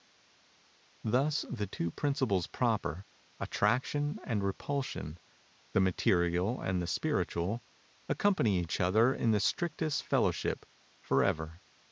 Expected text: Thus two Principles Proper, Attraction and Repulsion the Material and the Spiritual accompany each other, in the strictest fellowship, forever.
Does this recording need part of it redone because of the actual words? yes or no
yes